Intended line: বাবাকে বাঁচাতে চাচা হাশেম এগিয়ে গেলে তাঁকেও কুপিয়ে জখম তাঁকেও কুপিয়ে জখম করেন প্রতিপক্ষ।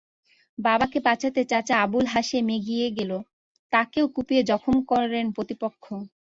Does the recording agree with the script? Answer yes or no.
no